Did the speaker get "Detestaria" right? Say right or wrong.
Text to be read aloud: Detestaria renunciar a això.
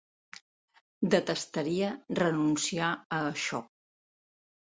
right